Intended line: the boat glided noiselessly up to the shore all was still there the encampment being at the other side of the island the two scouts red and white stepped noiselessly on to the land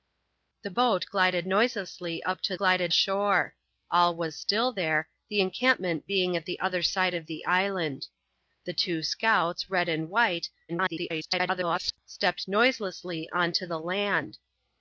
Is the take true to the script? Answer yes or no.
no